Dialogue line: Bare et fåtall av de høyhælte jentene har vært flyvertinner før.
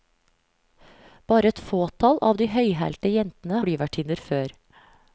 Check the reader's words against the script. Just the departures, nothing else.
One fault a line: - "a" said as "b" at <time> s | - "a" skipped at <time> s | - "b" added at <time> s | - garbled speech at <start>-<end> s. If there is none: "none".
- "har vært" skipped at 3.6 s